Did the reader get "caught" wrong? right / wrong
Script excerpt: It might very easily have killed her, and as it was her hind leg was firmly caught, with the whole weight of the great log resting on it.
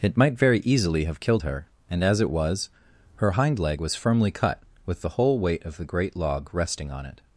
wrong